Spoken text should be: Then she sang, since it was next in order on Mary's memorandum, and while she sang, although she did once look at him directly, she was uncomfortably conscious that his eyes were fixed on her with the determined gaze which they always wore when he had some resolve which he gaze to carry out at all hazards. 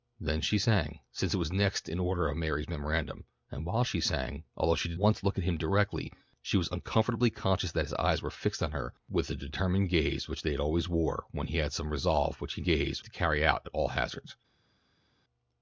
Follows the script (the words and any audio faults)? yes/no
yes